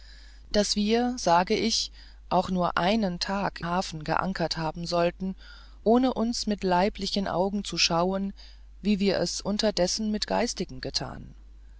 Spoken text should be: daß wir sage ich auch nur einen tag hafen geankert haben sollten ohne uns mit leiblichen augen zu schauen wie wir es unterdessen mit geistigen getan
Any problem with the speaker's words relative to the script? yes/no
no